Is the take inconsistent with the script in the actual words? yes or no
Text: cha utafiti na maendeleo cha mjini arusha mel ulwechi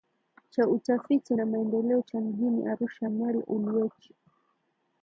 no